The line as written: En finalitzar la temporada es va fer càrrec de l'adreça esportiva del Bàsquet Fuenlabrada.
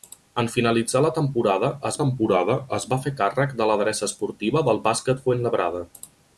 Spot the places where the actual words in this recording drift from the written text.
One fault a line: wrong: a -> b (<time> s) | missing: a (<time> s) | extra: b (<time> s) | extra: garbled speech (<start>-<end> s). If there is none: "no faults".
extra: temporada es (2.0 s)